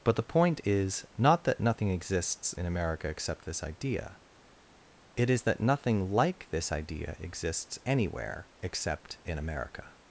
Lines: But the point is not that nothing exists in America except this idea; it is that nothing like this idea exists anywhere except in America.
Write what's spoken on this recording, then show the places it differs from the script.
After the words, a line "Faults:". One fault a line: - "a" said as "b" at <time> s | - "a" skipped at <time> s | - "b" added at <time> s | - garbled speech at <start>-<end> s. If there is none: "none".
But the point is not that nothing exists in America except this idea; it is that nothing like this idea exists anywhere except in America.
Faults:
none